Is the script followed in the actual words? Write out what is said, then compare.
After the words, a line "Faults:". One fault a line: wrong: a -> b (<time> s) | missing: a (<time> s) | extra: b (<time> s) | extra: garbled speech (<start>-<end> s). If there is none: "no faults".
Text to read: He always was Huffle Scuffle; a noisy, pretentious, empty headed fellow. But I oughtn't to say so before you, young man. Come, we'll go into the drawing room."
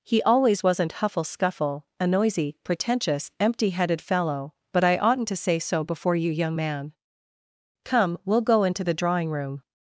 He always wasn't Huffle Scuffle; a noisy, pretentious, empty headed fellow. But I oughtn't to say so before you, young man. Come, we'll go into the drawing room."
Faults:
wrong: was -> wasn't (0.6 s)